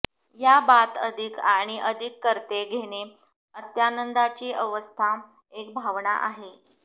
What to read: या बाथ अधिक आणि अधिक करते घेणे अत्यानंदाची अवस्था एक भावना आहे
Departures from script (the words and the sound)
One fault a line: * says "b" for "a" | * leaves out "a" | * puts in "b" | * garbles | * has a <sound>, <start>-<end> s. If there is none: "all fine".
all fine